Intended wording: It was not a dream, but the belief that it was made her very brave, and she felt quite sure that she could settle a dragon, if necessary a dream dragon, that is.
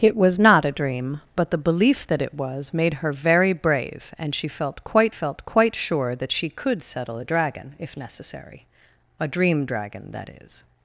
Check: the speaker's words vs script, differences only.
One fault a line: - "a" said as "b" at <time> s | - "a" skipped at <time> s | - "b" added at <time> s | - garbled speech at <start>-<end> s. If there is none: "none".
- "felt quite" added at 5.1 s